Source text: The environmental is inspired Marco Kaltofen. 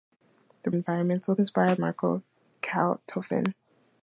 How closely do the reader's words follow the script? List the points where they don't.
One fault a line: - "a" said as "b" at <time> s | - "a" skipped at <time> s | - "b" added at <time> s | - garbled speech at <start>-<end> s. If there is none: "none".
none